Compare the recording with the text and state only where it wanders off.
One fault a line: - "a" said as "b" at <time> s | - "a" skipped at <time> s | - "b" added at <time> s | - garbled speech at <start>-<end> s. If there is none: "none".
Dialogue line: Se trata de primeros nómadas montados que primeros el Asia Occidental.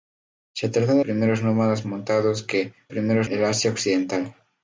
none